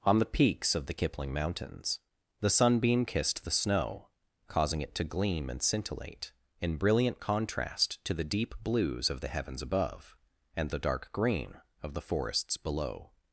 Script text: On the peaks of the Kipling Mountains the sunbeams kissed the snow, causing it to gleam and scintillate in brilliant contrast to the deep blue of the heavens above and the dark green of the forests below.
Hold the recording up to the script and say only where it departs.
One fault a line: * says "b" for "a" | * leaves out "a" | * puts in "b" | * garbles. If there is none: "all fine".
* says "sunbeam" for "sunbeams"
* says "blues" for "blue"